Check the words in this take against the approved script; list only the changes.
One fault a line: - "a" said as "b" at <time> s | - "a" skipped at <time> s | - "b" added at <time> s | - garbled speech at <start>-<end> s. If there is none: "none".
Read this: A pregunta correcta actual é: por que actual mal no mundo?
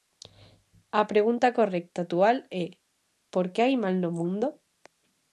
- "actual" said as "hai" at 3.6 s